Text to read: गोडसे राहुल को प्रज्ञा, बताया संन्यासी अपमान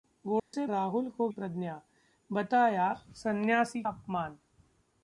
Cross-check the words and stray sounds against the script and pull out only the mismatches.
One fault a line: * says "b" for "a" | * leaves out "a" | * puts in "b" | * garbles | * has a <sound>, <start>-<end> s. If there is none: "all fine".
* has a dropout, 0.4-0.5 s